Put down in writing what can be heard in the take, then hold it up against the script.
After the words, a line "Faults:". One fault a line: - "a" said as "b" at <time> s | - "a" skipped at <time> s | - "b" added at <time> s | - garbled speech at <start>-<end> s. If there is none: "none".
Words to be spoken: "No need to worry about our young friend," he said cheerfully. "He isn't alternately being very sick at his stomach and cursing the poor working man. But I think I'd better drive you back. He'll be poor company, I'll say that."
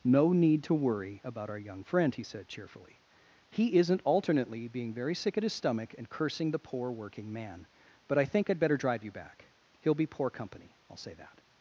"No need to worry about our young friend," he said cheerfully. "He isn't alternately being very sick at his stomach and cursing the poor working man. But I think I'd better drive you back. He'll be poor company, I'll say that."
Faults:
none